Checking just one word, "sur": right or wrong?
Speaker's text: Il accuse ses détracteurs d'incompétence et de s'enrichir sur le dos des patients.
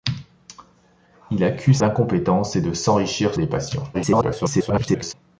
wrong